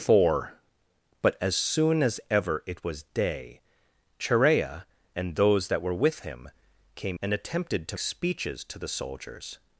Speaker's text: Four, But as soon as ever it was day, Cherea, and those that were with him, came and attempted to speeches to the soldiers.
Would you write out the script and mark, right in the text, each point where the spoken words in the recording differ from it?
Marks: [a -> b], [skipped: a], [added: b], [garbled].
Four, But as soon as ever it was day, Cherea, and those that were with him, came and attempted to speeches to the soldiers.